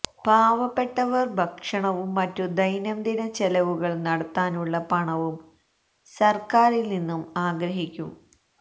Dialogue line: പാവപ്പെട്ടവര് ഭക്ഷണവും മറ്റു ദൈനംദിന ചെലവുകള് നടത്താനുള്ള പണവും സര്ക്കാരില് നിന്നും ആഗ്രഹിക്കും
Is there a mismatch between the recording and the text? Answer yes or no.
no